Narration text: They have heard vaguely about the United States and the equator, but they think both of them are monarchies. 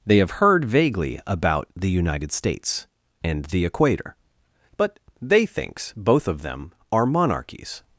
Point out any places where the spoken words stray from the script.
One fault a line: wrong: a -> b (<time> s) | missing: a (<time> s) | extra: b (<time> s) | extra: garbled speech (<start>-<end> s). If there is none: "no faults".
wrong: think -> thinks (5.5 s)